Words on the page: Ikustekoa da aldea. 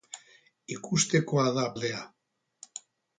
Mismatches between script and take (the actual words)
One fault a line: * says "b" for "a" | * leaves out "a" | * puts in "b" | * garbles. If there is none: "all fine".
all fine